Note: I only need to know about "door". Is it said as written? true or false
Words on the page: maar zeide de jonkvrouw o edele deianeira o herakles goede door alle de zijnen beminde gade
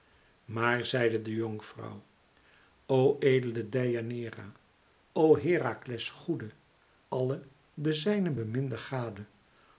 false